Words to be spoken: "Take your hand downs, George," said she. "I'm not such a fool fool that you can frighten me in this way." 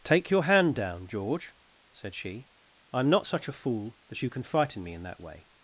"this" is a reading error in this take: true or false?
true